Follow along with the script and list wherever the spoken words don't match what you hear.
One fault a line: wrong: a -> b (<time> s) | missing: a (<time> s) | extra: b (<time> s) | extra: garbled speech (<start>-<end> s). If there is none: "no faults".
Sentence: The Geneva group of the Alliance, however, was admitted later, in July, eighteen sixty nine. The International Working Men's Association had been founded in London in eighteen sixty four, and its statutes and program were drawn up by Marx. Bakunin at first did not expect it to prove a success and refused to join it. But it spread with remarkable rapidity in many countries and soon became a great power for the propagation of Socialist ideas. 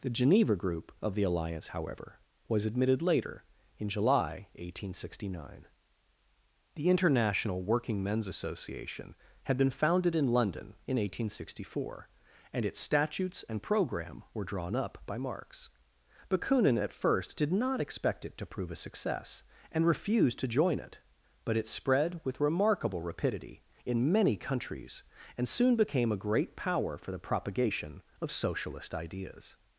no faults